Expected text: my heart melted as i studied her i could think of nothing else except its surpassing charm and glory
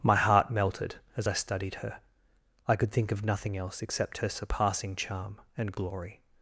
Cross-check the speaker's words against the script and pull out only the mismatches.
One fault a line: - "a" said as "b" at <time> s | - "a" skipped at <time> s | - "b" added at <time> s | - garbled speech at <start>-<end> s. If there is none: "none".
- "its" said as "her" at 4.2 s